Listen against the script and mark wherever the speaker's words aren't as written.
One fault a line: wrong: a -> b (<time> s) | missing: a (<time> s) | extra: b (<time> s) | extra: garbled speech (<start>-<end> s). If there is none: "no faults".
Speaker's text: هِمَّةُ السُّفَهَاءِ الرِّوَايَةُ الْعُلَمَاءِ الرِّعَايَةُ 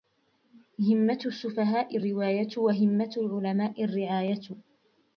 extra: وَهِمَّةُ (2.6 s)